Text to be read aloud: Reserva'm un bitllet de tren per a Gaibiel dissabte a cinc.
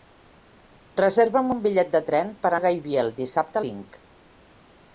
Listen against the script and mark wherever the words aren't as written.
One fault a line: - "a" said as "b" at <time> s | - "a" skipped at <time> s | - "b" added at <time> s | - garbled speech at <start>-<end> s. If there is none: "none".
none